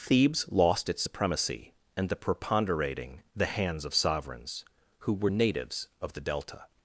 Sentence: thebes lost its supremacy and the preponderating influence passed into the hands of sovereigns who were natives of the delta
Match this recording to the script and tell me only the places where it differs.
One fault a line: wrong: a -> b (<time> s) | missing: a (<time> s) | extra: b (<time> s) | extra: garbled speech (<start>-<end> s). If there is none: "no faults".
missing: influence passed into (3.2 s)